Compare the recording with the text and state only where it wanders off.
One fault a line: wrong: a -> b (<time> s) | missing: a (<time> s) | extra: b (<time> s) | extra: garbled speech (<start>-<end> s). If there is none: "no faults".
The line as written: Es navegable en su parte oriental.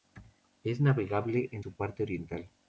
no faults